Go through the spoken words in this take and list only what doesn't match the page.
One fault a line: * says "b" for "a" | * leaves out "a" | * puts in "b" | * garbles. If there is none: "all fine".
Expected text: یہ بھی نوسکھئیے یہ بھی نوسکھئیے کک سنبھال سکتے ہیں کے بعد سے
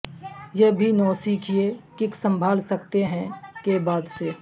* leaves out "یہ بھی نوسکھئیے"